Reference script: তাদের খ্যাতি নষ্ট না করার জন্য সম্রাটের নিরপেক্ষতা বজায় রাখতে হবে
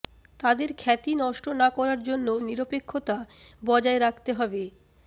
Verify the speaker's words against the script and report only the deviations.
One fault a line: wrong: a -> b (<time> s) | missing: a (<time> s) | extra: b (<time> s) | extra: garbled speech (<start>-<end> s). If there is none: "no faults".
missing: সম্রাটের (2.3 s)